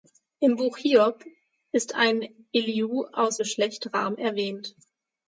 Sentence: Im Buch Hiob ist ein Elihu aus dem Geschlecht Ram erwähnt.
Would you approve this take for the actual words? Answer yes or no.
no